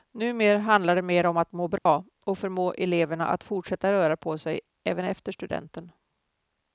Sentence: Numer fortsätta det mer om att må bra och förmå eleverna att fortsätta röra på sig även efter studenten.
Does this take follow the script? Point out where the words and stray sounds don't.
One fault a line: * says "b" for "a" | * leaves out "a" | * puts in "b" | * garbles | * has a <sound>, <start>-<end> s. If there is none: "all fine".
* says "handlar" for "fortsätta"
* has a dropout, 1.8-1.9 s